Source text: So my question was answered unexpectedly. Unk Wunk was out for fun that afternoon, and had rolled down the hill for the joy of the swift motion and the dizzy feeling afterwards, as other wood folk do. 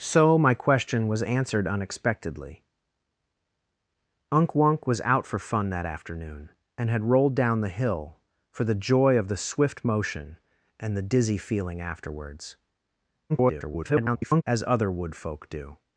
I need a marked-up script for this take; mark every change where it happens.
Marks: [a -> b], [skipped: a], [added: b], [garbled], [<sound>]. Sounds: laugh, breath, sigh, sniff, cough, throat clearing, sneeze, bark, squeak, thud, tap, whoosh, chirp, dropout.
So my question was answered unexpectedly. Unk Wunk was out for fun that afternoon, and had rolled down the hill for the joy of the swift motion and the dizzy feeling afterwards, [garbled] as other wood folk do.